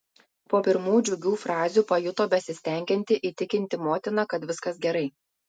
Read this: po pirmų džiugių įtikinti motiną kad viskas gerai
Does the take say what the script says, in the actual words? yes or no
no